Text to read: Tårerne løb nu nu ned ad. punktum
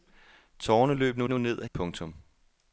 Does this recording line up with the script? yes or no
yes